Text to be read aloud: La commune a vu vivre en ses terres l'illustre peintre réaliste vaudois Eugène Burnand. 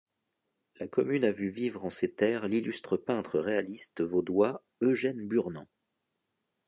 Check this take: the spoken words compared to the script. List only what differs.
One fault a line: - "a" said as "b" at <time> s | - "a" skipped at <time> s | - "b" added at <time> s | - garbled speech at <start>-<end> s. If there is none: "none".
none